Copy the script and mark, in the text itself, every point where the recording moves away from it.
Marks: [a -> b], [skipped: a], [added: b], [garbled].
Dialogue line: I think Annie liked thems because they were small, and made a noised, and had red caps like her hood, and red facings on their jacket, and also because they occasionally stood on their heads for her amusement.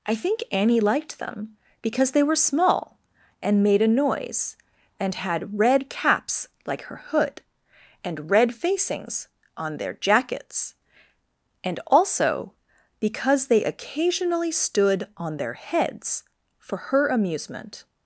I think Annie liked [thems -> them] because they were small, and made a [noised, -> noise] and had red caps like her hood, and red facings on their [jacket, -> jackets] and also because they occasionally stood on their heads for her amusement.